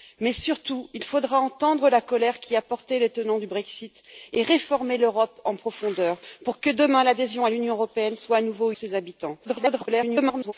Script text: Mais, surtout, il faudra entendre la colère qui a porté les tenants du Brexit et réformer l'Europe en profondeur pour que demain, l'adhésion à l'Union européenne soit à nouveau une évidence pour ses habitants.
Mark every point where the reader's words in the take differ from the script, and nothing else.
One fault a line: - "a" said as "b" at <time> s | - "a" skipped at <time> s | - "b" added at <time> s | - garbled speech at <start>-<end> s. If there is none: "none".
- "une évidence pour" skipped at 8.7 s
- garbled speech at 9.4-10.5 s